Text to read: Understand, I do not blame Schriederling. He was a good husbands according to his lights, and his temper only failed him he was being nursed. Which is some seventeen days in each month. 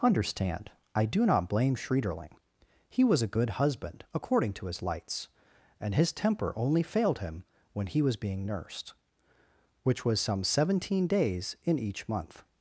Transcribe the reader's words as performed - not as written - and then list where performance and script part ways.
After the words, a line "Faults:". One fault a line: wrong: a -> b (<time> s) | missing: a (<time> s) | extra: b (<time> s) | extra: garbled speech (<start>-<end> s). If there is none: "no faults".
Understand, I do not blame Schriederling. He was a good husband according to his lights, and his temper only failed him when he was being nursed. Which was some seventeen days in each month.
Faults:
wrong: husbands -> husband (3.5 s)
extra: when (7.7 s)
wrong: is -> was (10.0 s)